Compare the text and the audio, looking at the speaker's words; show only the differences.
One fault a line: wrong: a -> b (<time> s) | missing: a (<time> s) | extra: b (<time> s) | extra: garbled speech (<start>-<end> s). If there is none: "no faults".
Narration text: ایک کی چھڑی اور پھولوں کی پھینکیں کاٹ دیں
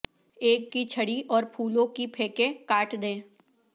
no faults